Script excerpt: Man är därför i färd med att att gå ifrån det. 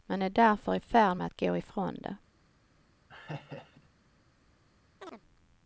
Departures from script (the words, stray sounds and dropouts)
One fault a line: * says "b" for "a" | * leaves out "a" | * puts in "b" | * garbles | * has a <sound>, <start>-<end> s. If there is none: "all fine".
* leaves out "att"
* has a laugh, 3.1-3.9 s
* has a chirp, 5.0-5.2 s